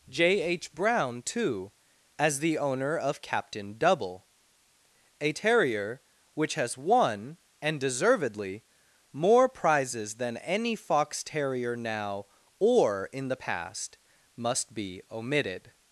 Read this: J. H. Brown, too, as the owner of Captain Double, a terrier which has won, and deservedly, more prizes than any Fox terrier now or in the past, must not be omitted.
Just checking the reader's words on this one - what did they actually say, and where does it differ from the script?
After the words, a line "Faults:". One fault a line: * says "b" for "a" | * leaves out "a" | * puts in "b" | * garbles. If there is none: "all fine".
J. H. Brown, too, as the owner of Captain Double, a terrier which has won, and deservedly, more prizes than any Fox terrier now or in the past, must be omitted.
Faults:
* leaves out "not"